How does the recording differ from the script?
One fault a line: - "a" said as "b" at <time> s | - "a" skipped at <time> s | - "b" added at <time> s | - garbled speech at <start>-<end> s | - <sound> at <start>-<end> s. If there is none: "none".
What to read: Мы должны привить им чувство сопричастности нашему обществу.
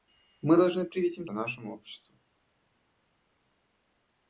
- "чувство сопричастности" skipped at 1.3 s